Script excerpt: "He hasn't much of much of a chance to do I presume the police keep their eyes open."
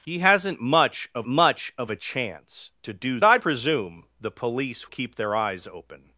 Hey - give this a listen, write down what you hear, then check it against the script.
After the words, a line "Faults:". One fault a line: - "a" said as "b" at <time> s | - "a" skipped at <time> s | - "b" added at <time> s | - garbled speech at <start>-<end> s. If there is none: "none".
"He hasn't much of much of a chance to do I presume the police keep their eyes open."
Faults:
none